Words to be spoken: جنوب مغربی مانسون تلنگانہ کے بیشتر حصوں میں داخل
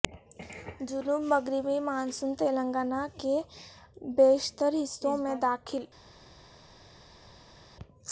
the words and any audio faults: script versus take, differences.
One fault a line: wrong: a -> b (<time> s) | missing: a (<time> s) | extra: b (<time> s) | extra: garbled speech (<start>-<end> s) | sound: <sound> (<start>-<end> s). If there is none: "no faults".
no faults